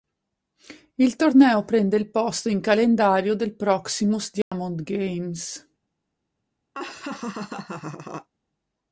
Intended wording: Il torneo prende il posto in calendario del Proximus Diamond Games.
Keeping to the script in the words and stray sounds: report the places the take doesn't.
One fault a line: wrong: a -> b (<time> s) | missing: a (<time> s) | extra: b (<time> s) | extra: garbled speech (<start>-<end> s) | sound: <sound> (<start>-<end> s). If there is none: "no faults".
sound: dropout (4.4-4.5 s)
sound: laugh (6.7-8.3 s)